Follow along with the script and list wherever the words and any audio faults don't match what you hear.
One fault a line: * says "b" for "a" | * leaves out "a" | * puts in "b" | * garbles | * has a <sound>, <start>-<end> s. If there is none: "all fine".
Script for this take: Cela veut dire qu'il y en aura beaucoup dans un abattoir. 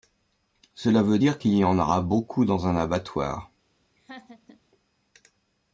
* has a laugh, 4.0-4.6 s